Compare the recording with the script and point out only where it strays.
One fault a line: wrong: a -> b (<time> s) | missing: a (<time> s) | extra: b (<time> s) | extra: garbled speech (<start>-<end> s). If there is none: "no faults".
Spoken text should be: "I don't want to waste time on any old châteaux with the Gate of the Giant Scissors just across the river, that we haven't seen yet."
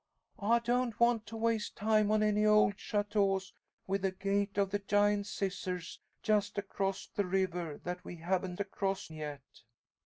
wrong: seen -> across (8.6 s)